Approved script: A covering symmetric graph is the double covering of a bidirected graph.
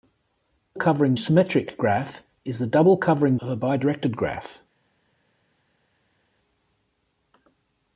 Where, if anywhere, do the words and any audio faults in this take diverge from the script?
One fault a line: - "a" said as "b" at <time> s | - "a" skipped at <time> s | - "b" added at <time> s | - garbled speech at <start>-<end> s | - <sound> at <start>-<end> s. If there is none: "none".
none